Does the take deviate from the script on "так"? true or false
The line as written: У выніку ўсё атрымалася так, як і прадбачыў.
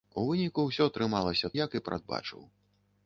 true